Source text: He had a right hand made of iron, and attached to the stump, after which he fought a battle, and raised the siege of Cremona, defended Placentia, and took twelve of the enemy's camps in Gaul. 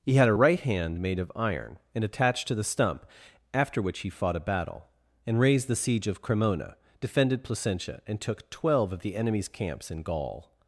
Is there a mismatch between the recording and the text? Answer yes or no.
no